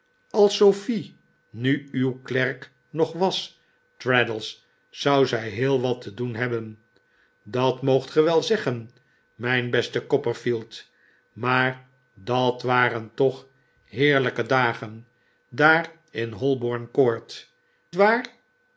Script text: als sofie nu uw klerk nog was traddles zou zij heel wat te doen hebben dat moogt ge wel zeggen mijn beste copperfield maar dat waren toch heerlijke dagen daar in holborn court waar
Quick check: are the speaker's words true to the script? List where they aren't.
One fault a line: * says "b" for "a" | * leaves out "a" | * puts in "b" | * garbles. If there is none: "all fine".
all fine